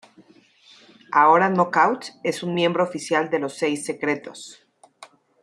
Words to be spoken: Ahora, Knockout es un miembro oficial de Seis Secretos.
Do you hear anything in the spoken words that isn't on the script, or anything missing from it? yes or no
yes